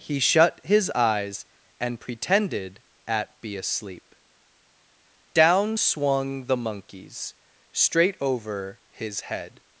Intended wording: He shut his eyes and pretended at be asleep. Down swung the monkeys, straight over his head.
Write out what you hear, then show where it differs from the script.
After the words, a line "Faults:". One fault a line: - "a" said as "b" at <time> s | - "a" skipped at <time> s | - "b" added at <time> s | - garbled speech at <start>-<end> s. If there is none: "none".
He shut his eyes and pretended at be asleep. Down swung the monkeys, straight over his head.
Faults:
none